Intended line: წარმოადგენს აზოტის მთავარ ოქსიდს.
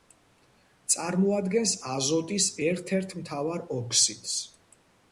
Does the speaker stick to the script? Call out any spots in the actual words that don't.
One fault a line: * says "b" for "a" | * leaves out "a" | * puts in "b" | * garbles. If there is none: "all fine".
* puts in "ერთ ერთ"